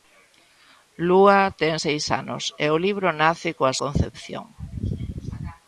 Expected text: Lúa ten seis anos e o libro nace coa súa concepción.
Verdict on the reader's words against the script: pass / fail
fail